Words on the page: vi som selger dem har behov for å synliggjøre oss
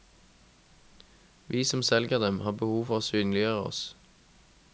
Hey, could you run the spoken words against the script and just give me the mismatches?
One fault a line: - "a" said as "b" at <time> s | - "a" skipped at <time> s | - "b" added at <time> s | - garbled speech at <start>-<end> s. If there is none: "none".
none